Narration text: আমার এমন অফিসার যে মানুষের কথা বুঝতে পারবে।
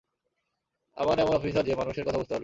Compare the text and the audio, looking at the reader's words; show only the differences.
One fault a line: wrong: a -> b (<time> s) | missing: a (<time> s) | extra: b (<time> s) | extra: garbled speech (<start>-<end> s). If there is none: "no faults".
no faults